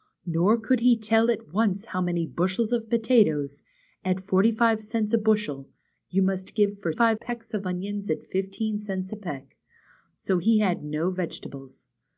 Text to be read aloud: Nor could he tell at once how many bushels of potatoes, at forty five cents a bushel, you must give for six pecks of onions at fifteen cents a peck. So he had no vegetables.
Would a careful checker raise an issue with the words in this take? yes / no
yes